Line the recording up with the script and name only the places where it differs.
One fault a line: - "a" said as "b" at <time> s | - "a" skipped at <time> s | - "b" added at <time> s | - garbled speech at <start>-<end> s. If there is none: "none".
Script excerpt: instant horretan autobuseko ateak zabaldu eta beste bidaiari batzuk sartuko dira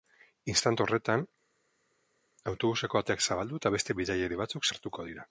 none